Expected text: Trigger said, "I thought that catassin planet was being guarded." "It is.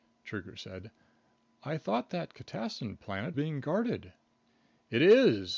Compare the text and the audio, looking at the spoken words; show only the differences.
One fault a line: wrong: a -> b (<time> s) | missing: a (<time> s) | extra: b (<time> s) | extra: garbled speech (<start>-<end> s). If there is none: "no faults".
missing: was (3.4 s)